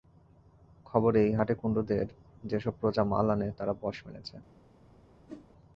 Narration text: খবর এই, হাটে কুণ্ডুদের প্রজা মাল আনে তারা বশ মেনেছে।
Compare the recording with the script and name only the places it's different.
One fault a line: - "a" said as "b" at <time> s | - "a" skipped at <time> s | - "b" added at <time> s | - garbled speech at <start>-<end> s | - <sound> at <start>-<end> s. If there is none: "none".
- "যে-সব" added at 2.4 s
- whoosh at 5.3-5.5 s